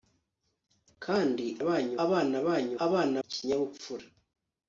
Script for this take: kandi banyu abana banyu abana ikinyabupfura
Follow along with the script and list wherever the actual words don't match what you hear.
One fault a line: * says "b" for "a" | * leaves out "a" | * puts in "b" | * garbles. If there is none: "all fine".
all fine